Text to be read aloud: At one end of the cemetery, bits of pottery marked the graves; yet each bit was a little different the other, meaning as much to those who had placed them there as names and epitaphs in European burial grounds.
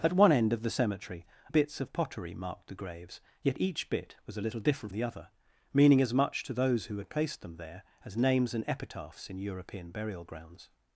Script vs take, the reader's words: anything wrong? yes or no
no